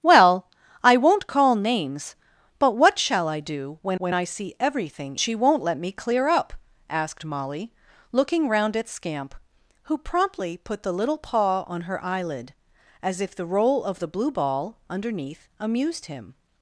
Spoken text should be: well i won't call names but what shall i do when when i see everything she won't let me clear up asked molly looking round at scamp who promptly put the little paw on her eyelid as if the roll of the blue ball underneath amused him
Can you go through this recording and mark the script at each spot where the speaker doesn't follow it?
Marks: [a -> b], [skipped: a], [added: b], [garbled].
well i won't call names but what shall i do when when i see everything she won't let me clear up asked molly looking round at scamp who promptly put the little paw on her eyelid as if the roll of the blue ball underneath amused him